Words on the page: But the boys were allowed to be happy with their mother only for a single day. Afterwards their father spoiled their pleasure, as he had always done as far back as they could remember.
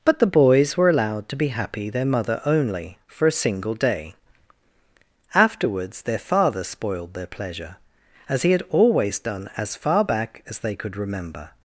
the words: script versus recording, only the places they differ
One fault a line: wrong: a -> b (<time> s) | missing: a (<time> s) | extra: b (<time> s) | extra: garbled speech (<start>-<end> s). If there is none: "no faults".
missing: with (1.9 s)